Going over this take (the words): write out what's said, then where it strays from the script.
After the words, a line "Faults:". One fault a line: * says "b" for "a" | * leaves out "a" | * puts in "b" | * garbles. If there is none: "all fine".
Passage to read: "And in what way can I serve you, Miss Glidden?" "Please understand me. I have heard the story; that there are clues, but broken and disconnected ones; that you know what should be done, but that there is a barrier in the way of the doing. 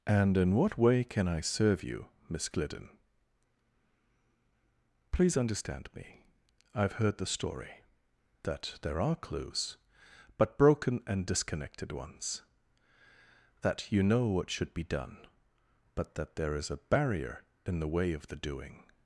"And in what way can I serve you, Miss Glidden?" "Please understand me. I have heard the story; that there are clues, but broken and disconnected ones; that you know what should be done, but that there is a barrier in the way of the doing.
Faults:
all fine